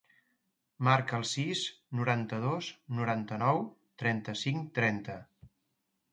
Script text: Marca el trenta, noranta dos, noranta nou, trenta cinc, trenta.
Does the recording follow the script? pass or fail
fail